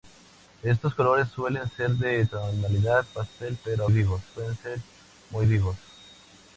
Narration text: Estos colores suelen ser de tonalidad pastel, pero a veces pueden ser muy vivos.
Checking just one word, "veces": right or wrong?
wrong